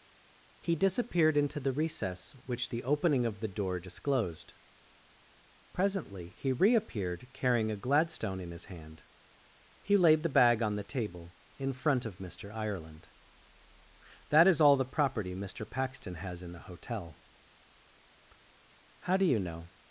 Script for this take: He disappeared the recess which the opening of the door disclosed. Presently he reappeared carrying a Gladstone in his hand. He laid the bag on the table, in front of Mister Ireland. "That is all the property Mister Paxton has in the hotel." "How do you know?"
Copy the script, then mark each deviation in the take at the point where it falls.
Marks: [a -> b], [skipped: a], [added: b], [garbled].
He disappeared [added: into] the recess which the opening of the door disclosed. Presently he reappeared carrying a Gladstone in his hand. He laid the bag on the table, in front of Mister Ireland. "That is all the property Mister Paxton has in the hotel." "How do you know?"